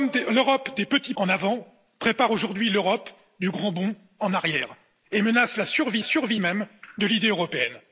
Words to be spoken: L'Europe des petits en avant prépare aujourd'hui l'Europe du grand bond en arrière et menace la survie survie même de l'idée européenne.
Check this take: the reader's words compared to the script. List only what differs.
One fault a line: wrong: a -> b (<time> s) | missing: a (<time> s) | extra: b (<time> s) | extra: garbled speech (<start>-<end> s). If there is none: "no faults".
no faults